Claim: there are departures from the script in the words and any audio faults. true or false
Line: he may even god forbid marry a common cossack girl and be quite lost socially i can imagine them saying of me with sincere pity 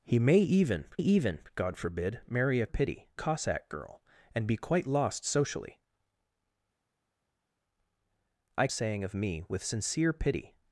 true